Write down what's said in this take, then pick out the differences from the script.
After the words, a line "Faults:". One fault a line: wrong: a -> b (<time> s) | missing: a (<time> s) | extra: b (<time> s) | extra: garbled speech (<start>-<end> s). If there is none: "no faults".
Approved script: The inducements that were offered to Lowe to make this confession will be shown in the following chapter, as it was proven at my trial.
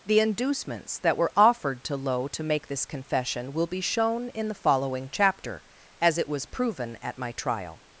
The inducements that were offered to Lowe to make this confession will be shown in the following chapter, as it was proven at my trial.
Faults:
no faults